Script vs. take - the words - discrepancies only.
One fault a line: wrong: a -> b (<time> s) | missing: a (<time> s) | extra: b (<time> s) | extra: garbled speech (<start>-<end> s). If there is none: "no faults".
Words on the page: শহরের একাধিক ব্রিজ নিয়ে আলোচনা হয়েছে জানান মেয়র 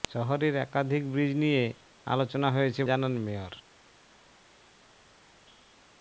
no faults